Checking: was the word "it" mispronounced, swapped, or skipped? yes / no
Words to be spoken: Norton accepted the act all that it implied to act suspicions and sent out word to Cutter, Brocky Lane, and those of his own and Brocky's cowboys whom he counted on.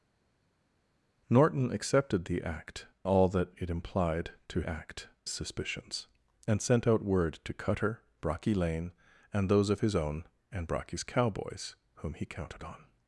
no